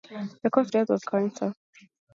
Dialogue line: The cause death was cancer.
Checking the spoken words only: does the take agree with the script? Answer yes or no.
yes